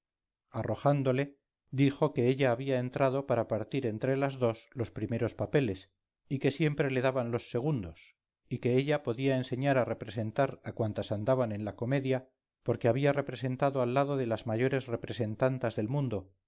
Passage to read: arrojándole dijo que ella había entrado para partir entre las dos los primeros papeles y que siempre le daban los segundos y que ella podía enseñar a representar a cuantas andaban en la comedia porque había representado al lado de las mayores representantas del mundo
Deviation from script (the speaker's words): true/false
false